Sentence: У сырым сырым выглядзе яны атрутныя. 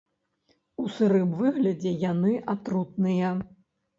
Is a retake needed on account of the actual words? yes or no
yes